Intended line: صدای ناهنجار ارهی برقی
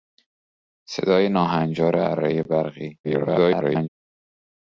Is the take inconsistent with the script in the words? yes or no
yes